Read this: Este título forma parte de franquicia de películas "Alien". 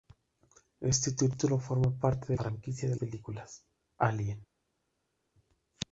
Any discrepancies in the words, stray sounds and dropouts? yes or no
no